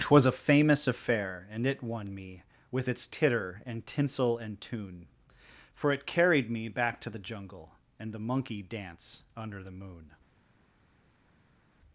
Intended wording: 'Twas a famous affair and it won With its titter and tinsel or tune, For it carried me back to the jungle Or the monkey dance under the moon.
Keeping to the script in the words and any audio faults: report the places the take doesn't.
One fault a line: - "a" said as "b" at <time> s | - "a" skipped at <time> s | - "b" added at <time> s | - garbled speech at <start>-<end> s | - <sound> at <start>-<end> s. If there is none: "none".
- "me" added at 2.1 s
- "or" said as "and" at 4.3 s
- "Or" said as "And" at 8.0 s